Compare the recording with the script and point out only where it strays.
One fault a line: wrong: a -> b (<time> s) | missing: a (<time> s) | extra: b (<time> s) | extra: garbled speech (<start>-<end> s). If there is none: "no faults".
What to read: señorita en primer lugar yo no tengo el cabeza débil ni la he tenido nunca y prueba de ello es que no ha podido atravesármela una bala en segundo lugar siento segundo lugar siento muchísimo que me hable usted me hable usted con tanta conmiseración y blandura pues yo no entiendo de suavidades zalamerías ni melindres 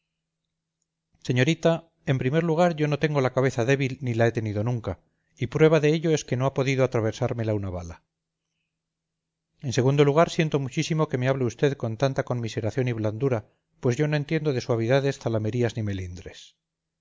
wrong: el -> la (3.2 s)
missing: segundo lugar siento (10.6 s)
missing: me hable usted (11.7 s)